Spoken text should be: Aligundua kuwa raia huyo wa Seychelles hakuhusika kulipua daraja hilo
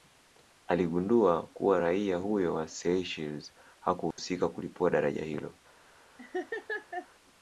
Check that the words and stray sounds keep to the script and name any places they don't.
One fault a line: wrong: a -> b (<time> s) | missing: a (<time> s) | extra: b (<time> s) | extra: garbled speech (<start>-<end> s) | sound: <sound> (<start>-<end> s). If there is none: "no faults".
sound: dropout (4.1-4.2 s)
sound: laugh (6.2-7.1 s)